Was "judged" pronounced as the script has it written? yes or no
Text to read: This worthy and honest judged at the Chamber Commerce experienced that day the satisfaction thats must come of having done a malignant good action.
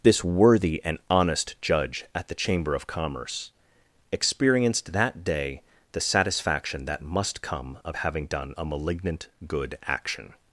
no